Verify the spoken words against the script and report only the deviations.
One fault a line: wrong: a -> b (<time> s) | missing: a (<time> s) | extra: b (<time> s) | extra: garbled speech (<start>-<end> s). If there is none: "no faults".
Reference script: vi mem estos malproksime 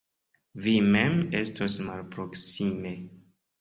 no faults